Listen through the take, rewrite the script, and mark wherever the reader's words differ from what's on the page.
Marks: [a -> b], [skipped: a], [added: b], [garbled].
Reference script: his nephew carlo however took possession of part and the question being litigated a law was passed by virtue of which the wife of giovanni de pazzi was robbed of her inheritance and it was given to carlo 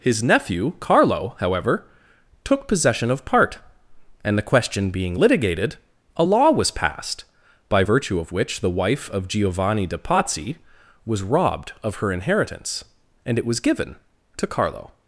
his nephew carlo however took possession of part and the question being litigated a law was passed by virtue of which the wife of giovanni de pazzi was robbed of her inheritance and it was given to carlo